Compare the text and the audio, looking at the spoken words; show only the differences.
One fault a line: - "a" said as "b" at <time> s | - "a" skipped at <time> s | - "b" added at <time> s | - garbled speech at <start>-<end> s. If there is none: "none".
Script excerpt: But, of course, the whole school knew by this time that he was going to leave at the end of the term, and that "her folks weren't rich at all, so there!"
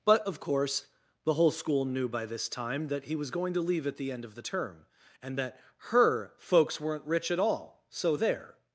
none